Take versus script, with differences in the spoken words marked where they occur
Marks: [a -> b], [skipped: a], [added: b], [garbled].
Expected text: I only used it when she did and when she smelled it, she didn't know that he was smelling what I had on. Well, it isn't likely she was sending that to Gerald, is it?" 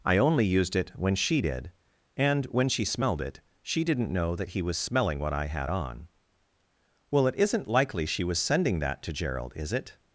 I only used it when she did and when she smelled it, she didn't know that he was smelling what I had on. Well, it isn't likely she was sending that to Gerald, is it?"